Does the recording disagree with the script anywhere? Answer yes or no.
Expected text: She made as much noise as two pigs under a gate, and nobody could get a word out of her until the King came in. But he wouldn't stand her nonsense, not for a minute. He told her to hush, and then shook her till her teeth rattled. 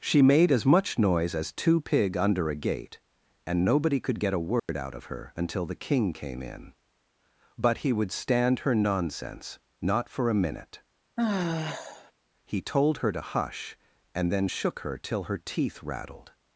yes